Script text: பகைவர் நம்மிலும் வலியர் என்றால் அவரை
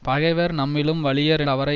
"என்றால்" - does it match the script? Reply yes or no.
no